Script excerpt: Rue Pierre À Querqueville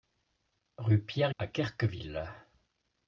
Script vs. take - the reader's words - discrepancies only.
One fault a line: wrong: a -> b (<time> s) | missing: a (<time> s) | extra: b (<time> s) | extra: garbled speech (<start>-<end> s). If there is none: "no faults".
no faults